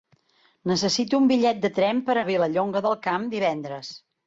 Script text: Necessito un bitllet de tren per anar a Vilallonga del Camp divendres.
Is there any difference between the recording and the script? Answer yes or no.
yes